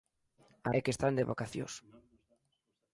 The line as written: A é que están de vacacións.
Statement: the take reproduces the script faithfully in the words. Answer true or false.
true